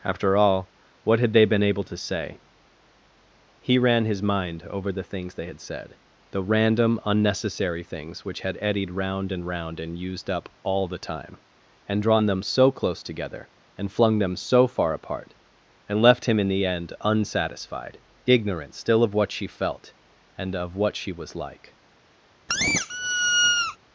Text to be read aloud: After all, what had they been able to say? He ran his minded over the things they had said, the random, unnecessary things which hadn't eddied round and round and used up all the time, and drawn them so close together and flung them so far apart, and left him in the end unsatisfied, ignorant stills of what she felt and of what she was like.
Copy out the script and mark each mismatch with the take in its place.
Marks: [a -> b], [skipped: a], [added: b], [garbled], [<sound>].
After all, what had they been able to say? He ran his [minded -> mind] over the things they had said, the random, unnecessary things which [hadn't -> had] eddied round and round and used up all the time, and drawn them so close together and flung them so far apart, and left him in the end unsatisfied, ignorant [stills -> still] of what she felt and of what she was like. [squeak]